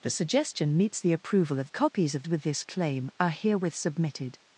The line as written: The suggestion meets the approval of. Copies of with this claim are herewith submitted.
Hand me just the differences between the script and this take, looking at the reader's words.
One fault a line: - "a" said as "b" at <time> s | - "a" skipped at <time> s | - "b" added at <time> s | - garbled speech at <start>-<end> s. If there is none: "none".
none